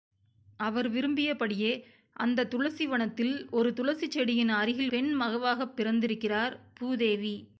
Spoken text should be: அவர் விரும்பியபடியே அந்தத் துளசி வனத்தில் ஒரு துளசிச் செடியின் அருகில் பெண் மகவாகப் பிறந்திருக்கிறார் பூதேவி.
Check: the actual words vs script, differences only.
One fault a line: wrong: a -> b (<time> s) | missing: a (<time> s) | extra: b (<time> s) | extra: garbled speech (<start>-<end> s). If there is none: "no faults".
no faults